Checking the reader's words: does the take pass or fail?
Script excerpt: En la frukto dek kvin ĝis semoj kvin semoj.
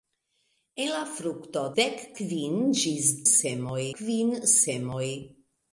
pass